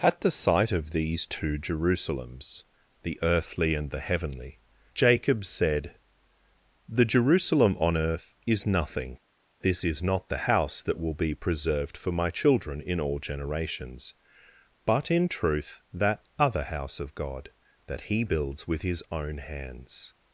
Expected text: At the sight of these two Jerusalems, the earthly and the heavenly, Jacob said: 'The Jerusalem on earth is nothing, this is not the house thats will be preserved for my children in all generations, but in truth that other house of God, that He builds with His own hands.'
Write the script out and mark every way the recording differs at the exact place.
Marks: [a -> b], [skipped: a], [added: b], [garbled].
At the sight of these two Jerusalems, the earthly and the heavenly, Jacob said: 'The Jerusalem on earth is nothing, this is not the house [thats -> that] will be preserved for my children in all generations, but in truth that other house of God, that He builds with His own hands.'